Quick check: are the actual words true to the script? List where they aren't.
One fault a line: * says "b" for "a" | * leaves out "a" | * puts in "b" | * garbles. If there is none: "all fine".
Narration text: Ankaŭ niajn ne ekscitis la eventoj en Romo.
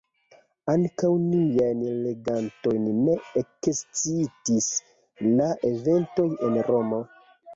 * puts in "legantojn"